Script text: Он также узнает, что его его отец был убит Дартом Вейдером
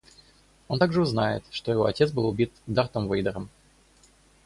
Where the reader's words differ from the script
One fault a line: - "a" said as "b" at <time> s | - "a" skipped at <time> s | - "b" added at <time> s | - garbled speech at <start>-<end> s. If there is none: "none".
- "его" skipped at 1.8 s